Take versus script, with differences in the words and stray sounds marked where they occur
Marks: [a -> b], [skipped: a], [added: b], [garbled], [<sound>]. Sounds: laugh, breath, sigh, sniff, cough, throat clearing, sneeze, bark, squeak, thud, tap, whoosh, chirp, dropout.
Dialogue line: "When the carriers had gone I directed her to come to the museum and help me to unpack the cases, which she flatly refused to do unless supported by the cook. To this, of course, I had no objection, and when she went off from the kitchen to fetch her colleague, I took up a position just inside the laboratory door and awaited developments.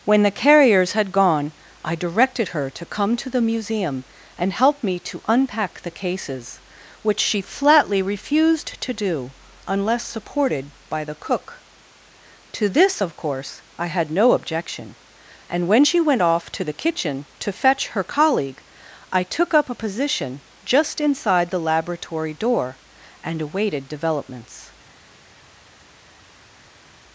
"When the carriers had gone I directed her to come to the museum and help me to unpack the cases, which she flatly refused to do unless supported by the cook. To this, of course, I had no objection, and when she went off [from -> to] the kitchen to fetch her colleague, I took up a position just inside the laboratory door and awaited developments.